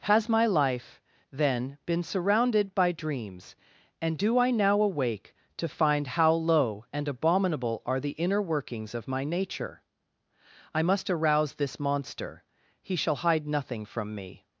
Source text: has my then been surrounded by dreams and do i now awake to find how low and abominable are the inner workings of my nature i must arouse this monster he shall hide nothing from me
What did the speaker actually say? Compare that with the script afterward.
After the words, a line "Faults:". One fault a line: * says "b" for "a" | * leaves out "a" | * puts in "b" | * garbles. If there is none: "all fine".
has my life then been surrounded by dreams and do i now awake to find how low and abominable are the inner workings of my nature i must arouse this monster he shall hide nothing from me
Faults:
* puts in "life"